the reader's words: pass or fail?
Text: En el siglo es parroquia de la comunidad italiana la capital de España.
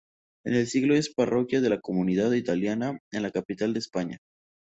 fail